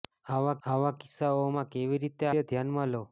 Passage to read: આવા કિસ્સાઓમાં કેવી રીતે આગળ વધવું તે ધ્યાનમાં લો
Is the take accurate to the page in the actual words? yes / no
no